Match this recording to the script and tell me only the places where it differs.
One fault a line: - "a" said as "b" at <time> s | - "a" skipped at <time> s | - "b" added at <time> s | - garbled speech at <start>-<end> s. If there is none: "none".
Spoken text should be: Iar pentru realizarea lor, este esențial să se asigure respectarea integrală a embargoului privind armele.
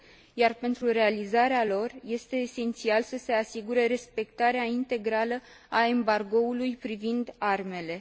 none